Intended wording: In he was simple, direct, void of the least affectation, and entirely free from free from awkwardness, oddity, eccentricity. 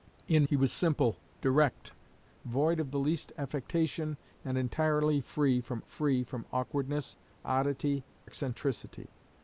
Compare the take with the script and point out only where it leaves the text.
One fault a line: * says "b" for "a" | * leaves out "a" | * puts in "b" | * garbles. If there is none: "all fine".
all fine